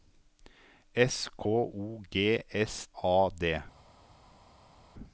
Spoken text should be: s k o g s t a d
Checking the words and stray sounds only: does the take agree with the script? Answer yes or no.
no